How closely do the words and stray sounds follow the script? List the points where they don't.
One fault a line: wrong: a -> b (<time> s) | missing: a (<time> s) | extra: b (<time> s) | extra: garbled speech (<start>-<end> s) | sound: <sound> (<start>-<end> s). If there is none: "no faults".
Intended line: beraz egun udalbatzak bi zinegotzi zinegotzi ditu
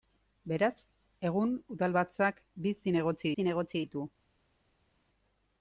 no faults